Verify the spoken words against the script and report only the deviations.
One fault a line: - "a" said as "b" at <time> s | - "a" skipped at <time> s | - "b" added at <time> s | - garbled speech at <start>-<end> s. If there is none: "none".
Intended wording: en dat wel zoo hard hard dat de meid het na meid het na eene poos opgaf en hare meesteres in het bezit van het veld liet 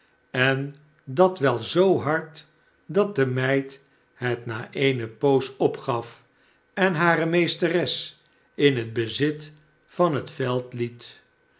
- "hard" skipped at 2.5 s
- "meid het na" skipped at 4.7 s